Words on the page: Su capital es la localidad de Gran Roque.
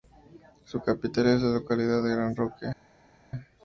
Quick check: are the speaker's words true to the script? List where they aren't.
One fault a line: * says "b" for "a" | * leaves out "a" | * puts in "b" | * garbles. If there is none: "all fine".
all fine